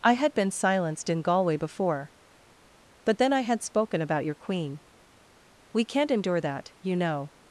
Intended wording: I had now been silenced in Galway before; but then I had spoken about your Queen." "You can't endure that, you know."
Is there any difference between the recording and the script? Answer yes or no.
yes